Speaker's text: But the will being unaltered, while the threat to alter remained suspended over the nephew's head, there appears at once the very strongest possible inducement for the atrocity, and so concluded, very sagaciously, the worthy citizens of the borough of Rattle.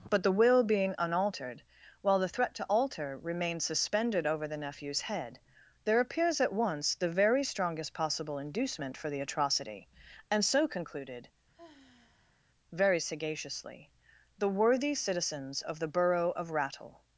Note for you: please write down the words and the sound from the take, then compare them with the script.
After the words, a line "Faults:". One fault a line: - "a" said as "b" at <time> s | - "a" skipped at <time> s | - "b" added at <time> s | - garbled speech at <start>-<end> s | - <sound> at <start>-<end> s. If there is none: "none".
But the will being unaltered, while the threat to alter remains suspended over the nephew's head, there appears at once the very strongest possible inducement for the atrocity, and so concluded, very sagaciously, the worthy citizens of the borough of Rattle.
Faults:
- "remained" said as "remains" at 3.2 s
- sigh at 11.5-12.4 s